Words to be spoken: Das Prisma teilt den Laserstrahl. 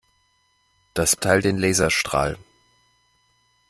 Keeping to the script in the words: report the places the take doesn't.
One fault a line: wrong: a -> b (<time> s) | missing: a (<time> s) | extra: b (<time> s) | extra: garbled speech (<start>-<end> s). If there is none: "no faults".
missing: Prisma (1.1 s)